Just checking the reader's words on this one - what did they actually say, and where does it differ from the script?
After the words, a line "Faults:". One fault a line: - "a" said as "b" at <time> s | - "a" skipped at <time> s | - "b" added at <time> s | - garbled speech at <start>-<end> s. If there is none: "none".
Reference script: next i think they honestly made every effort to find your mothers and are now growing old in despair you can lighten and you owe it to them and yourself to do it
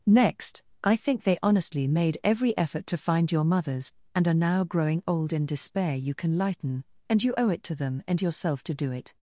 next i think they honestly made every effort to find your mothers and are now growing old in despair you can lighten and you owe it to them and yourself to do it
Faults:
none